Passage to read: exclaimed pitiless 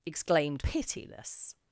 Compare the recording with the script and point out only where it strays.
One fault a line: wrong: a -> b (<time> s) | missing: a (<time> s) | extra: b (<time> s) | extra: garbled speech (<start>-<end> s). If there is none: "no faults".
no faults